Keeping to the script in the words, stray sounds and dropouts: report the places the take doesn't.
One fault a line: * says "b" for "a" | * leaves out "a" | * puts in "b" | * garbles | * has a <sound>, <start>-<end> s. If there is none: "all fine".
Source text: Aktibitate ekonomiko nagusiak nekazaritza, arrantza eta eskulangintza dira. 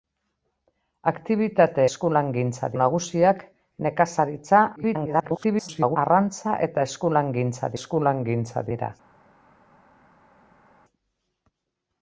* says "eskulangintza" for "ekonomiko"
* garbles
* puts in "eskulangintza"